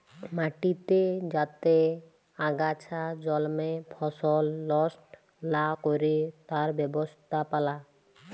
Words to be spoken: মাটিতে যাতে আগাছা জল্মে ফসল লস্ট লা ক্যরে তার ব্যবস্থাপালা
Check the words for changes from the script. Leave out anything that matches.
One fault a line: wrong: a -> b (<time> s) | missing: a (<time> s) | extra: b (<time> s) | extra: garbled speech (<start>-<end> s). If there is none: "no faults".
no faults